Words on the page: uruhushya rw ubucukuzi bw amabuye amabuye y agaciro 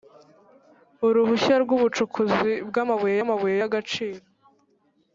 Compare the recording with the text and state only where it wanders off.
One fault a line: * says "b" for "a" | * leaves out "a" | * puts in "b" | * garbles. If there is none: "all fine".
all fine